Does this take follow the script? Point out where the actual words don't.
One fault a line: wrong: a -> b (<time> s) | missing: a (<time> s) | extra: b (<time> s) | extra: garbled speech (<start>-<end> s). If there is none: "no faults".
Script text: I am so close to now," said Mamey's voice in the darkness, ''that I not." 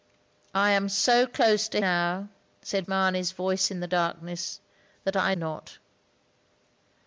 no faults